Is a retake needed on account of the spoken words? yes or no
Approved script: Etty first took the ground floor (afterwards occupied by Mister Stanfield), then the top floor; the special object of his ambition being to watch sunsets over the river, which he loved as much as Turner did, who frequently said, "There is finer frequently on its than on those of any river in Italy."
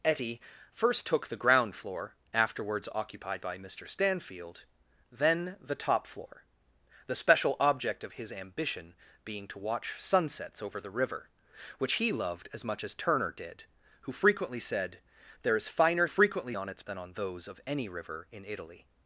no